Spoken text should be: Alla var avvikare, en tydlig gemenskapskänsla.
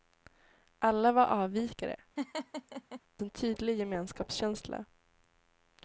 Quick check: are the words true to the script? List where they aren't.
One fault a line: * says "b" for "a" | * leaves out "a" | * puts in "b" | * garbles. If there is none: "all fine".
all fine